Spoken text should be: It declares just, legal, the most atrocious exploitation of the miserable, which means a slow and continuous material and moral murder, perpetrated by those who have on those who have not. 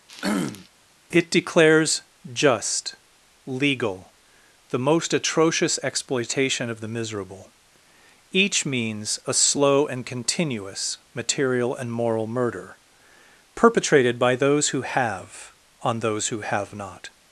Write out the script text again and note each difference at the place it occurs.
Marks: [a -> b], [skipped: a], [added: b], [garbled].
It declares just, legal, the most atrocious exploitation of the miserable, [which -> each] means a slow and continuous material and moral murder, perpetrated by those who have on those who have not.